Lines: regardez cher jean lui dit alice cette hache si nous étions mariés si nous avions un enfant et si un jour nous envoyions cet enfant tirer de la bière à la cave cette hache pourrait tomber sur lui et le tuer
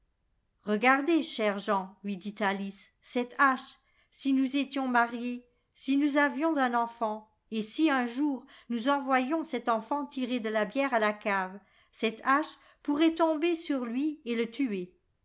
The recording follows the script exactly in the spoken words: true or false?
true